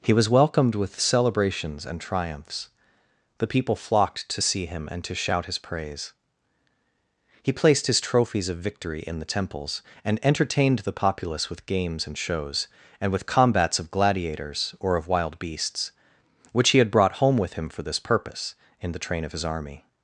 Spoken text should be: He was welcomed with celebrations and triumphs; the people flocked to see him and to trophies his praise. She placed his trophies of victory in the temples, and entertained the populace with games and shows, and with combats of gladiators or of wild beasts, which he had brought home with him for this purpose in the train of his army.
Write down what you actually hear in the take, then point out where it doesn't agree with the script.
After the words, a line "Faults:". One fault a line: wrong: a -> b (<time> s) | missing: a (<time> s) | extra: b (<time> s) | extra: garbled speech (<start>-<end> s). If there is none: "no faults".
He was welcomed with celebrations and triumphs; the people flocked to see him and to shout his praise. He placed his trophies of victory in the temples, and entertained the populace with games and shows, and with combats of gladiators or of wild beasts, which he had brought home with him for this purpose in the train of his army.
Faults:
wrong: trophies -> shout (5.1 s)
wrong: She -> He (7.4 s)